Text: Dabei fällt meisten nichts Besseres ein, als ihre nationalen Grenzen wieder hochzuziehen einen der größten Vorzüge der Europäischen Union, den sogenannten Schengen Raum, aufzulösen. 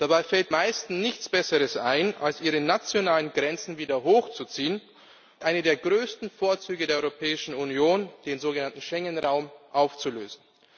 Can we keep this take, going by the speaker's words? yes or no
yes